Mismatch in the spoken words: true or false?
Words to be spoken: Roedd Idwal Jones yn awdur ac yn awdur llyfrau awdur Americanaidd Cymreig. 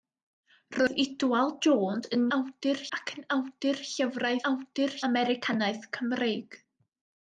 false